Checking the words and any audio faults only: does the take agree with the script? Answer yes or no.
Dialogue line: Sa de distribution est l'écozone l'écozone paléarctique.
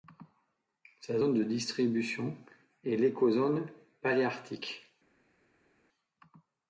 no